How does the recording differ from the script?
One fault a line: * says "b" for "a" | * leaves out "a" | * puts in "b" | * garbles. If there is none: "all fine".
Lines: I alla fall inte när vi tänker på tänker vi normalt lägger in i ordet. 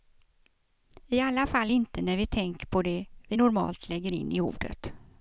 * says "det" for "tänker"